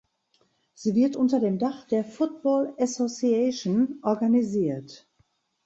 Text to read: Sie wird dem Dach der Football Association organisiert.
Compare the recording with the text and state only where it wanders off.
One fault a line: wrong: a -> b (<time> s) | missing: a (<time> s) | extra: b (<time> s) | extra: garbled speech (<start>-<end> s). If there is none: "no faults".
extra: unter (1.1 s)